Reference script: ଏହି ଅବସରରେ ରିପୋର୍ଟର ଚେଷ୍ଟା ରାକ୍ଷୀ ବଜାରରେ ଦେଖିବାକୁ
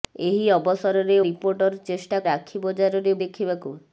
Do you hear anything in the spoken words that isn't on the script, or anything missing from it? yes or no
no